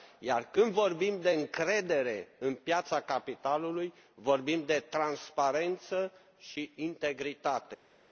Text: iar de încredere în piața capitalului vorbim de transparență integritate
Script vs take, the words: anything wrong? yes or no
yes